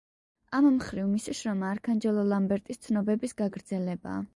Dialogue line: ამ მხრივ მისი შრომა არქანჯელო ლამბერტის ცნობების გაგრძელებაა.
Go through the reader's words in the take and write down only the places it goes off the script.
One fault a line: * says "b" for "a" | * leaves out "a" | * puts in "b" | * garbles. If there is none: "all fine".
all fine